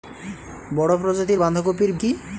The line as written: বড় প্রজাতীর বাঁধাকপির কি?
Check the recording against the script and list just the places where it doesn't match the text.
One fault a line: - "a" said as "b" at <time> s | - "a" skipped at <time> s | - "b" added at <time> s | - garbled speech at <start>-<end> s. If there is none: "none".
none